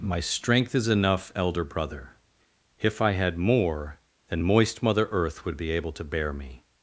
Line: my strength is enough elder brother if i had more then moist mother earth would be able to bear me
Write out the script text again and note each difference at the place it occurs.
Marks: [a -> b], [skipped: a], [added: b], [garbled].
my strength is enough elder brother if i had more then moist mother earth would be able to bear me